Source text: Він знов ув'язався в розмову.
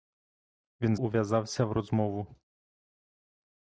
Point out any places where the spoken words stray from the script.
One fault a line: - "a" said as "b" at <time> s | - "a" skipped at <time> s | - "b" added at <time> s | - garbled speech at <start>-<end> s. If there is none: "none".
- "знов" skipped at 0.9 s